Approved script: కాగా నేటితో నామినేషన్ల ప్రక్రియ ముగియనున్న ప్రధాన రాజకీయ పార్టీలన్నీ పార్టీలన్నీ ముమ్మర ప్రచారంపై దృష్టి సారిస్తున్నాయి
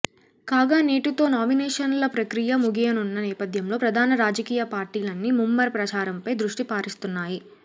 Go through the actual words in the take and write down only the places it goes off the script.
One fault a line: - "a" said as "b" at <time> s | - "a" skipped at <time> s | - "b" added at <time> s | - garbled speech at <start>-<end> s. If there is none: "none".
- "నేపథ్యంలో" added at 3.3 s
- "పార్టీలన్నీ" skipped at 5.3 s